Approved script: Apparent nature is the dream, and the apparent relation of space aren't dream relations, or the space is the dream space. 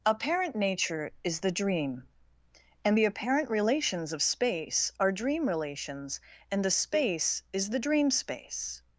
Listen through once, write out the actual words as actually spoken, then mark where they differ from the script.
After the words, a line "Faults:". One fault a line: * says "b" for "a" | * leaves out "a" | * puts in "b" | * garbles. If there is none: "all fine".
Apparent nature is the dream, and the apparent relations of space are dream relations, and the space is the dream space.
Faults:
* says "relations" for "relation"
* says "are" for "aren't"
* says "and" for "or"